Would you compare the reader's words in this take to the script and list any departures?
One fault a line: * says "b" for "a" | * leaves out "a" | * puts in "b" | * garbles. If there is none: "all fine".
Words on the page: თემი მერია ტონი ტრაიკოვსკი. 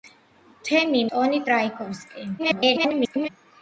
* leaves out "მერია"
* garbles